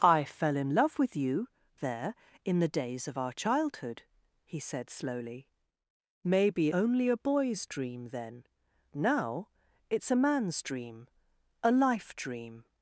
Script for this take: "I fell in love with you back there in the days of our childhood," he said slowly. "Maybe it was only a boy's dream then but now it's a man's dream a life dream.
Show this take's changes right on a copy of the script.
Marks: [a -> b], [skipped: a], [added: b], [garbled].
"I fell in love with you [skipped: back] there in the days of our childhood," he said slowly. "Maybe [skipped: it was] only a boy's dream then [skipped: but] now it's a man's dream a life dream.